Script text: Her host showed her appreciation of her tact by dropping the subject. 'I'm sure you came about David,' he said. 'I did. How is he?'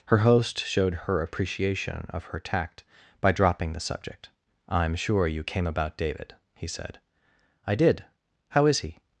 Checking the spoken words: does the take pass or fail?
pass